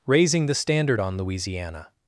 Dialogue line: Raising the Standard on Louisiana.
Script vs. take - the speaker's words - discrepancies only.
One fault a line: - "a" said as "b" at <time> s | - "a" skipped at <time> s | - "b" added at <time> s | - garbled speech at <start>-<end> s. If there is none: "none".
none